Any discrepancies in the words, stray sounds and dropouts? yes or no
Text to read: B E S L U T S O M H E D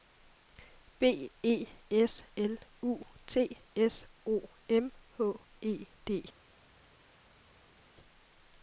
no